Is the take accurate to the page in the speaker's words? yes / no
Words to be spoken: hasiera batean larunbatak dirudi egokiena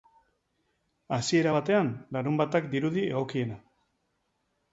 yes